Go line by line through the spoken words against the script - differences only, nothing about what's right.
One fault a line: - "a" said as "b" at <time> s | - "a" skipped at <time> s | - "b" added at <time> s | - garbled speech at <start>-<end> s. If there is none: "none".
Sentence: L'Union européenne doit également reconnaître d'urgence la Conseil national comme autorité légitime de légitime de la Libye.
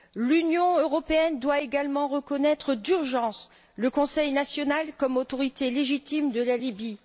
- "la" said as "le" at 3.8 s
- "légitime de" skipped at 6.4 s